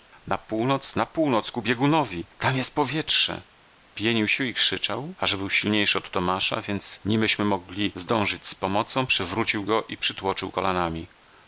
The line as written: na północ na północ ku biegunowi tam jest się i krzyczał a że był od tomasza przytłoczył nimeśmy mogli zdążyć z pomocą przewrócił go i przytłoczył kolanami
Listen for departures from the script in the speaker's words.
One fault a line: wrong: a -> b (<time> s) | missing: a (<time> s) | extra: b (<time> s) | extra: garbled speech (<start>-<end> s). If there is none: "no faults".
extra: powietrze pienił (2.8 s)
extra: silniejszy (5.5 s)
wrong: przytłoczył -> więc (6.6 s)